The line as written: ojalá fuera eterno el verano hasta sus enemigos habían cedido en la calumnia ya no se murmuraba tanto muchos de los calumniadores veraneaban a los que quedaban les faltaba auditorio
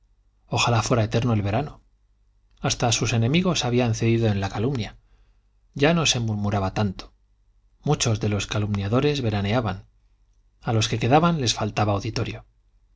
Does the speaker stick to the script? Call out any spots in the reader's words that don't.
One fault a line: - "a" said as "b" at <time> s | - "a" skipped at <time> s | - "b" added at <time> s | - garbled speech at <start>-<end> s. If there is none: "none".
none